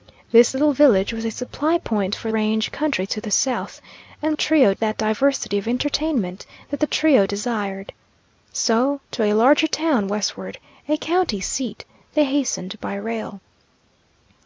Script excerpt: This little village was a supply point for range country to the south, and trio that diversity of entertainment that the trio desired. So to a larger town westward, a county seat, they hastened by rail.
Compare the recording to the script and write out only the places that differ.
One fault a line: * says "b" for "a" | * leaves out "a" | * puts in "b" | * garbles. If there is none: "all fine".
all fine